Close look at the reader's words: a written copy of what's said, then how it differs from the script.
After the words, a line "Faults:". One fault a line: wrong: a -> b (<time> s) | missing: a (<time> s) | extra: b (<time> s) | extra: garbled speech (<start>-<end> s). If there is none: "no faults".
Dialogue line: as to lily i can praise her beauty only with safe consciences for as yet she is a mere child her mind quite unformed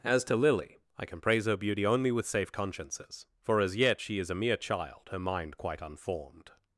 as to lily i can praise her beauty only with safe consciences for as yet she is a mere child her mind quite unformed
Faults:
no faults